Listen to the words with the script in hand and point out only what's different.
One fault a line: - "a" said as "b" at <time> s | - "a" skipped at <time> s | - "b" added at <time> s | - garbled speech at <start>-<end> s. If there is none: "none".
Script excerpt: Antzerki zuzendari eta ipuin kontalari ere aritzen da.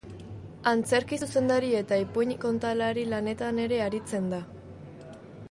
- "lanetan" added at 3.1 s